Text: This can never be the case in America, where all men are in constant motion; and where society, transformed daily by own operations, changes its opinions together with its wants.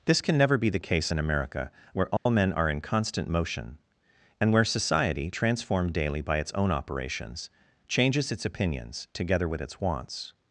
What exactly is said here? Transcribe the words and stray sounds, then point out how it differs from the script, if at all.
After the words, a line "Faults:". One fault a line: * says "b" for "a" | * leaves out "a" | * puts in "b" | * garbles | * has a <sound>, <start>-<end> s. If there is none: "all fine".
This can never be the case in America, where all men are in constant motion; and where society, transformed daily by its own operations, changes its opinions together with its wants.
Faults:
* has a dropout, 2.2-2.3 s
* puts in "its"